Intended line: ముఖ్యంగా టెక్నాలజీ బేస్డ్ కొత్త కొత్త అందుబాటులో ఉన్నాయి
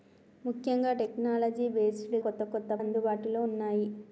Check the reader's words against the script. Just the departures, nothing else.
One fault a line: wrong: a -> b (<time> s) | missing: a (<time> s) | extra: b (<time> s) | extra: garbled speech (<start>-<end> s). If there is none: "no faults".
no faults